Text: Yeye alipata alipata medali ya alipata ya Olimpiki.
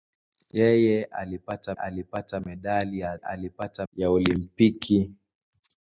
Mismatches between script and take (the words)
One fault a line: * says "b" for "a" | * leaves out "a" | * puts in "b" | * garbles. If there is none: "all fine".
all fine